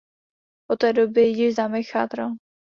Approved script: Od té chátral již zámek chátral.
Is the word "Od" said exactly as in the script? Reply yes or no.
yes